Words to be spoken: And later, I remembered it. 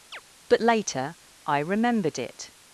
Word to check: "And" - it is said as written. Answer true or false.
false